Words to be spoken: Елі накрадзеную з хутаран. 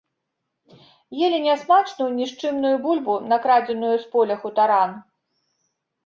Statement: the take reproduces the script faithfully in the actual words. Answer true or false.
false